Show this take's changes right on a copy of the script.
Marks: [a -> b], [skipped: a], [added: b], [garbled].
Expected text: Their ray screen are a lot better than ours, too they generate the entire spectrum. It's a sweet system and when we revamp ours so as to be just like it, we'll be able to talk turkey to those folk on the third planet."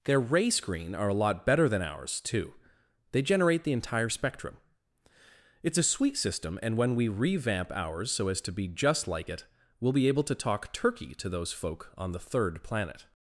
Their ray screen are a lot better than ours, too they generate the entire spectrum. It's a sweet system and when we revamp ours so as to be just like it, we'll be able to talk turkey to those folk on the third planet."